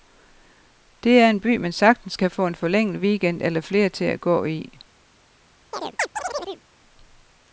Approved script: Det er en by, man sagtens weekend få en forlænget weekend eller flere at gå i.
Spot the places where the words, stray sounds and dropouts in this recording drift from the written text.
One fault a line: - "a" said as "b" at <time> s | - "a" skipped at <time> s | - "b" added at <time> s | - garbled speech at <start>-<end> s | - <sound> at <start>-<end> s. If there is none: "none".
- "weekend" said as "kan" at 2.1 s
- "til" added at 3.9 s
- chirp at 5.7-6.6 s